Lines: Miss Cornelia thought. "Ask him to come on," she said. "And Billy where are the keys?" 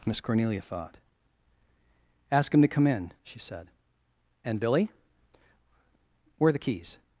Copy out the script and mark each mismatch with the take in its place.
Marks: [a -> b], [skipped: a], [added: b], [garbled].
Miss Cornelia thought. "Ask him to come [on," -> in] she said. "And Billy where are the keys?"